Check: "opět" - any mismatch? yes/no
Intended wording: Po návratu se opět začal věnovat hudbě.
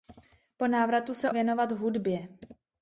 yes